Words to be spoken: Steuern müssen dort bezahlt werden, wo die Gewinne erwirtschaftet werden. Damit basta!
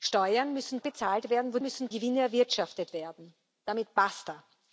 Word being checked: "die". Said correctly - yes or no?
no